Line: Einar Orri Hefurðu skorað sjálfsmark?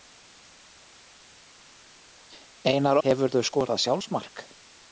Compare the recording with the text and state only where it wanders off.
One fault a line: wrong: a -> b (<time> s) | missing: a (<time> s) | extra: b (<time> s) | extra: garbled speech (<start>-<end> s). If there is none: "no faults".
missing: Orri (3.0 s)